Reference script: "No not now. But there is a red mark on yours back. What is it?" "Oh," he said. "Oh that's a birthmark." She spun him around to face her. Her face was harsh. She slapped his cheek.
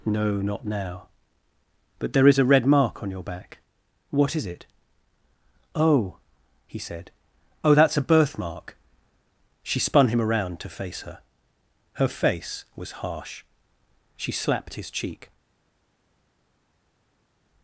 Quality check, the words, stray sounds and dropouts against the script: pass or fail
fail